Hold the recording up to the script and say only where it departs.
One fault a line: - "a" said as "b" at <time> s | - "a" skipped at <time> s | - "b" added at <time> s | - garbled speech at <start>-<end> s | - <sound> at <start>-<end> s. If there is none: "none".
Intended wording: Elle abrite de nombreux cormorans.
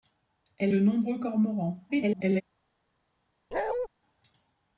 - "abrite" skipped at 0.7 s
- garbled speech at 1.9-2.4 s
- bark at 3.5-3.9 s